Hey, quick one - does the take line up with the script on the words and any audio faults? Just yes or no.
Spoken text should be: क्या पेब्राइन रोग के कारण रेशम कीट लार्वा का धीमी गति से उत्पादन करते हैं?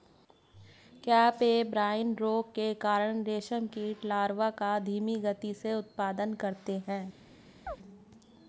no